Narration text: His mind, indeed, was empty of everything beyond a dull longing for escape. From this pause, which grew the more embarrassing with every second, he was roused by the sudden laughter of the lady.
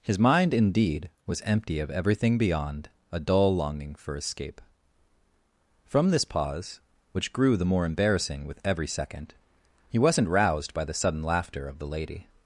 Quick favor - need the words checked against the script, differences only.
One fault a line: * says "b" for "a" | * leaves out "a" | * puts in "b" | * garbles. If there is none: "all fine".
* says "wasn't" for "was"